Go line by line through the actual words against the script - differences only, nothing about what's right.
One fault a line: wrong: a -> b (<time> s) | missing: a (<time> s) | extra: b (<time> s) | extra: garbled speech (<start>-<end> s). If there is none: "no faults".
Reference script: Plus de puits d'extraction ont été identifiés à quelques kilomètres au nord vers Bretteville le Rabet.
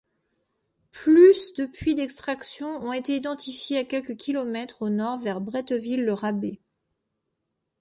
no faults